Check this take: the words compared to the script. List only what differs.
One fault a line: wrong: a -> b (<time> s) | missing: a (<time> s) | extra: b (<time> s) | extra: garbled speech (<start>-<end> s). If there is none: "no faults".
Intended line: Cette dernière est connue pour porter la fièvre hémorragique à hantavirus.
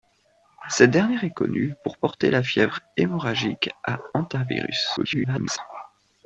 extra: garbled speech (5.0-5.6 s)